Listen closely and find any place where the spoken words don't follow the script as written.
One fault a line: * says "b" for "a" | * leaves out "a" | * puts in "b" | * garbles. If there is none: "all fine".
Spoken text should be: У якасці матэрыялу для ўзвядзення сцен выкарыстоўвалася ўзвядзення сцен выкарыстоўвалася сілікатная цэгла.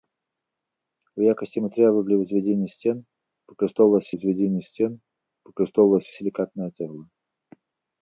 all fine